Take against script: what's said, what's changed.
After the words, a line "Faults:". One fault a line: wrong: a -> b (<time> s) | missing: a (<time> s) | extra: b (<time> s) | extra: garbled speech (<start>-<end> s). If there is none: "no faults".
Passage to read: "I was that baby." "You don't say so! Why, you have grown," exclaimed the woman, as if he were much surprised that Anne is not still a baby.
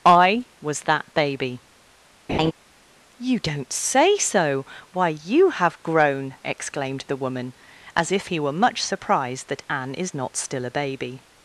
"I was that baby." "You don't say so! Why, you have grown," exclaimed the woman, as if he were much surprised that Anne is not still a baby.
Faults:
no faults